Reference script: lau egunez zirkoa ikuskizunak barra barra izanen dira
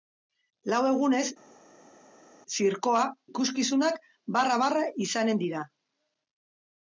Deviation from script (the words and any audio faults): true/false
false